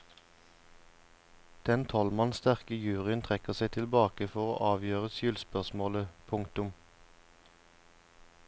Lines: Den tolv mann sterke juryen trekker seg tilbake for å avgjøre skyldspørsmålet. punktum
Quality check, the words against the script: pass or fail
pass